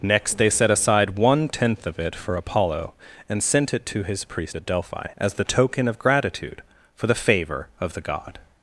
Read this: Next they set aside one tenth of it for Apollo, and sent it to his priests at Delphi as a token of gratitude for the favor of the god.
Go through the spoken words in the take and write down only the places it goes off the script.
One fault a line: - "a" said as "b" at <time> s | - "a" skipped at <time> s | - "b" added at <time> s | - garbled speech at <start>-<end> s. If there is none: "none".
- "priests" said as "priest" at 4.2 s
- "a" said as "the" at 5.3 s